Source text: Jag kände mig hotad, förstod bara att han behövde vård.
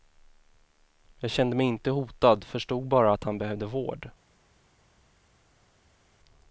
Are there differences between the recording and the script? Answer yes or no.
yes